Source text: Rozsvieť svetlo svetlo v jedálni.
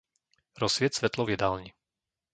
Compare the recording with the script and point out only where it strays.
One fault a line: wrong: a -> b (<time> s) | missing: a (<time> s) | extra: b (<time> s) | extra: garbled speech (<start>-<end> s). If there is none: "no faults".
missing: svetlo (1.3 s)